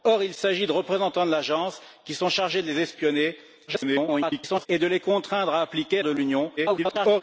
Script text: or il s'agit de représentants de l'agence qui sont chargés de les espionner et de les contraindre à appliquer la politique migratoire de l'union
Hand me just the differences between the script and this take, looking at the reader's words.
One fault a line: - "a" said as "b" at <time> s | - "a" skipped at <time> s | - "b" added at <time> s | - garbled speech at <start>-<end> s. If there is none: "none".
- garbled speech at 3.7-4.7 s
- "la politique migratoire" skipped at 6.0 s
- garbled speech at 6.6-7.2 s